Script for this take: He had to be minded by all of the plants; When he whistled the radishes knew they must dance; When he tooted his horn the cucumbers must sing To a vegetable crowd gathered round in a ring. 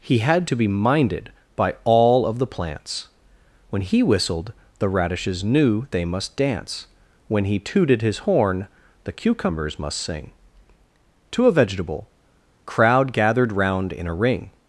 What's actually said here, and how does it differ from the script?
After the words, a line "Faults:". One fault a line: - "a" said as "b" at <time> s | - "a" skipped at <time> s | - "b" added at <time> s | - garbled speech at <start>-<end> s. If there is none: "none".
He had to be minded by all of the plants; When he whistled the radishes knew they must dance; When he tooted his horn the cucumbers must sing To a vegetable crowd gathered round in a ring.
Faults:
none